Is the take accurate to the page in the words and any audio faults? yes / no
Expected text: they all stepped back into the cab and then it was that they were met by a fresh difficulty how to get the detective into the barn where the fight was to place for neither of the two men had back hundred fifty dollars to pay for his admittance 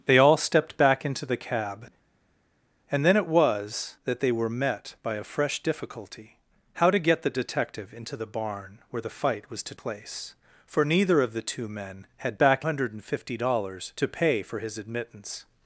yes